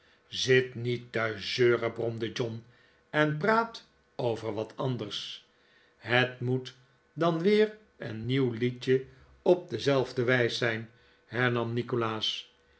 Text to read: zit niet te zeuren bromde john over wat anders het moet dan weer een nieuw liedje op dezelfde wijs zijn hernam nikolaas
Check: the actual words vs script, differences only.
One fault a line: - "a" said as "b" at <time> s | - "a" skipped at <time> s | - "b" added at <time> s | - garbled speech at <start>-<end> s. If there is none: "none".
- "en praat" added at 3.1 s